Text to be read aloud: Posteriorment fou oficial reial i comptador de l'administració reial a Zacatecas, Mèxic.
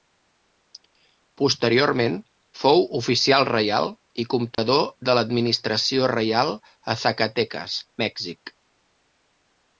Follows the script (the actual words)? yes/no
yes